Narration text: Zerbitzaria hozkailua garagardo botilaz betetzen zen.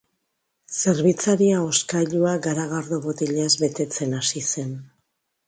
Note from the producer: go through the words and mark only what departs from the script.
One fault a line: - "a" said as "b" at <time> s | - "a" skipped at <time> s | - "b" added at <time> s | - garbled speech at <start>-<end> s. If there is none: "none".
- "hasi" added at 4.2 s